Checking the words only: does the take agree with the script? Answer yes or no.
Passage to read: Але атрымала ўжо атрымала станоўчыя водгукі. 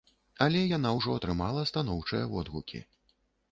no